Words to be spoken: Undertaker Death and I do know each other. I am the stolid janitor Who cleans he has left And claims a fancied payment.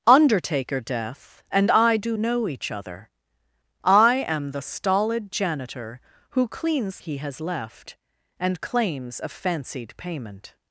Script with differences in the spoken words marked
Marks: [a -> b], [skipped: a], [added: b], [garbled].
Undertaker Death and I do know each other. I am the stolid janitor Who cleans he has left And claims a fancied payment.